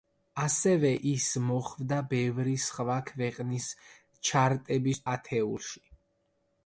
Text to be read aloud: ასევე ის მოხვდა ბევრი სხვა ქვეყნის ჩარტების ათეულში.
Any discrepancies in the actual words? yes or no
no